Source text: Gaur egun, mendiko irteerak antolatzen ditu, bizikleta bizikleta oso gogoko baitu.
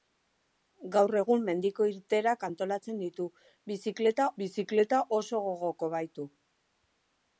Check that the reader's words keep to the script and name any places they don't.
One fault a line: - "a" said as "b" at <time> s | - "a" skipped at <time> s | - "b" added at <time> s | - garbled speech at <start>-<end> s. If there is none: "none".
none